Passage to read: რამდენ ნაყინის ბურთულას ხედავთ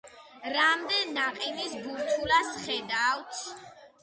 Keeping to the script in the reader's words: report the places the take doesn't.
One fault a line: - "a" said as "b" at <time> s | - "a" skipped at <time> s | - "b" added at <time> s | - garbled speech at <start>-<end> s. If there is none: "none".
none